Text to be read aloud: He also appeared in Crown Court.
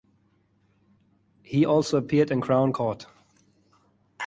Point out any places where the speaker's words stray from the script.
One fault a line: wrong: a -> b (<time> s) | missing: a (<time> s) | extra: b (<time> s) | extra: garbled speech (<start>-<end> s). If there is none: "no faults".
no faults